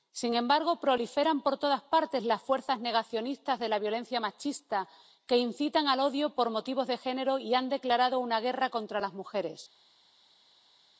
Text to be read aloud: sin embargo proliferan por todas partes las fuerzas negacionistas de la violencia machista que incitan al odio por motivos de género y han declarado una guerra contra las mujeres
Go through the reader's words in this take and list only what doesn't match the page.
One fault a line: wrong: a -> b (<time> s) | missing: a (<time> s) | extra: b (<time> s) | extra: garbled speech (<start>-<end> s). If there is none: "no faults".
no faults